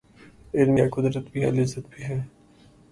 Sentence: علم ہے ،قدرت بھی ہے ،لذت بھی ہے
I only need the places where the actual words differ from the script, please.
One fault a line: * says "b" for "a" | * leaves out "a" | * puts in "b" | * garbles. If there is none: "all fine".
all fine